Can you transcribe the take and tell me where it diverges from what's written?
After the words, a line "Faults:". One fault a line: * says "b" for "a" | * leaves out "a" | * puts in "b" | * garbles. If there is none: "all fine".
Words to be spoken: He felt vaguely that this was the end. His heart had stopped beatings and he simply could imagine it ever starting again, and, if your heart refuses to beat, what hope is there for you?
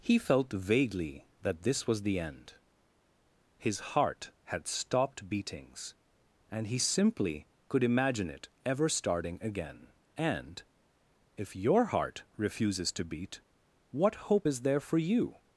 He felt vaguely that this was the end. His heart had stopped beatings and he simply could imagine it ever starting again, and, if your heart refuses to beat, what hope is there for you?
Faults:
all fine